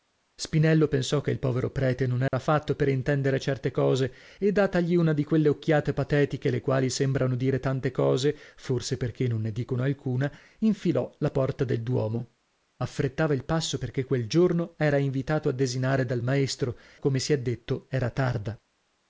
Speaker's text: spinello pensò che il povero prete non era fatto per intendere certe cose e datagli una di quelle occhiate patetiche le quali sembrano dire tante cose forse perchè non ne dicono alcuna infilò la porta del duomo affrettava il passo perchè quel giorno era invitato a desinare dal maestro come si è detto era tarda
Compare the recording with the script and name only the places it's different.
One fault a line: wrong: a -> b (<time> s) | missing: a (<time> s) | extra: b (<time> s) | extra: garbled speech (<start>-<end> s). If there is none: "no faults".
no faults